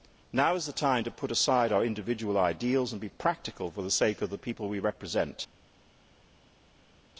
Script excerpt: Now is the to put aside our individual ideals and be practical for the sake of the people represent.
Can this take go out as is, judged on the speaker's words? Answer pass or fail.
fail